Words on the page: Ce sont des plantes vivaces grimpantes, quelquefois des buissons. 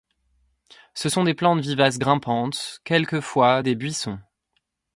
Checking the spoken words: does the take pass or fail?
pass